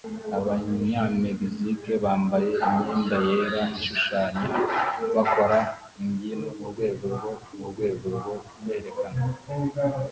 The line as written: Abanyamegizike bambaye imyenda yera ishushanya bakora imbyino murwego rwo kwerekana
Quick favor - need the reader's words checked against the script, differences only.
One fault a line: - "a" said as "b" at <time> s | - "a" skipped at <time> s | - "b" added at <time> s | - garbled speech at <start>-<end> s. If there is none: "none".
- "murwego rwo" added at 7.6 s